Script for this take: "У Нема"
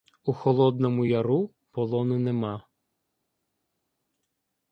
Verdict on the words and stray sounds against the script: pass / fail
fail